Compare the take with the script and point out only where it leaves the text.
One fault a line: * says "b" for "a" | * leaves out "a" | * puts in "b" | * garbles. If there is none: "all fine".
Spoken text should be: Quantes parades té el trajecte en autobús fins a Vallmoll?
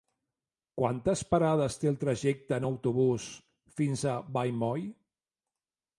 all fine